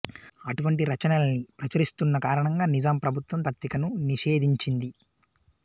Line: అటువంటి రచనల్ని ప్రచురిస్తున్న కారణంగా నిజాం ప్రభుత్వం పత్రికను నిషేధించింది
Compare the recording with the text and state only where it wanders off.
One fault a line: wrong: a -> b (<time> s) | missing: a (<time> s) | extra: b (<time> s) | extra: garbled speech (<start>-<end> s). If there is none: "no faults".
no faults